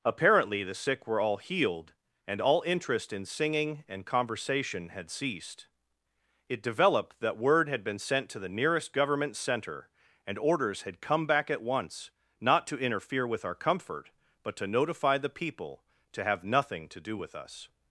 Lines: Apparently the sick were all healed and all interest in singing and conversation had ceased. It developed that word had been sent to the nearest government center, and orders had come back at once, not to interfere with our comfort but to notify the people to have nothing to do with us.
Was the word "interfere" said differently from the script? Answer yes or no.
no